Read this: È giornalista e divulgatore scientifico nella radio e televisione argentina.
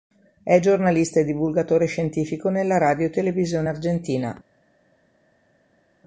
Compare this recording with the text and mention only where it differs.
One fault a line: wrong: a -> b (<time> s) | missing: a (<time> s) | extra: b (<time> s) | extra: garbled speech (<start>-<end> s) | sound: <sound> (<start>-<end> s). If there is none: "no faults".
no faults